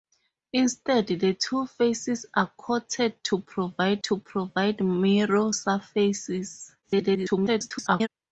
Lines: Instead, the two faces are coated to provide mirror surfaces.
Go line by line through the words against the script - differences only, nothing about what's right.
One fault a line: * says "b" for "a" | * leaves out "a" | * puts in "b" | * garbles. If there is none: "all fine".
* puts in "to provide"
* garbles